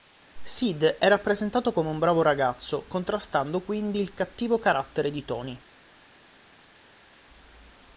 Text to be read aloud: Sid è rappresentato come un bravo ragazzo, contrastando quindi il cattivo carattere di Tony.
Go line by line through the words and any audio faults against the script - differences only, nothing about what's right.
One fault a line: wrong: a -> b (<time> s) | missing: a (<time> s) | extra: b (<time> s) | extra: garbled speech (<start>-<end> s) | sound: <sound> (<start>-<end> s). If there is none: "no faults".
no faults